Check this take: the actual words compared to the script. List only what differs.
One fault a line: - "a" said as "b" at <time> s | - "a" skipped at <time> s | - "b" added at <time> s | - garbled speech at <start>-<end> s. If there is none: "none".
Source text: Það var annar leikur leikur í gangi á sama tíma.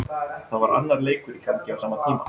- "leikur" skipped at 1.4 s